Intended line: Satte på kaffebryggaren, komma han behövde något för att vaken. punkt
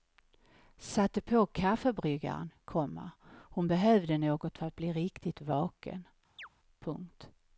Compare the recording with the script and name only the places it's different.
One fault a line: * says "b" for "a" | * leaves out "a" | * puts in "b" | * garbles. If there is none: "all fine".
* says "hon" for "han"
* puts in "bli riktigt"